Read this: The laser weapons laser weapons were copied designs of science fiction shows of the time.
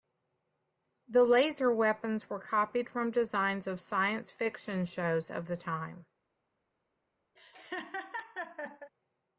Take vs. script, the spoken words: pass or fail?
fail